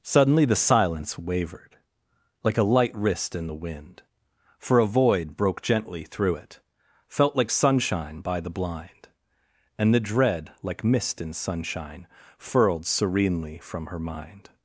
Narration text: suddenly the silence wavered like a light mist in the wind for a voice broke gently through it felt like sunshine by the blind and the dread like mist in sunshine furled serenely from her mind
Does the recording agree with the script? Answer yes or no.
no